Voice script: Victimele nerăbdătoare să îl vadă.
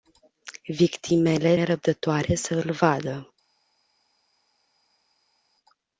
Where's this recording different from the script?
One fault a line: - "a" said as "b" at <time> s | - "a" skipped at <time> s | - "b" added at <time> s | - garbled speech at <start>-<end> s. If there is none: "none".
none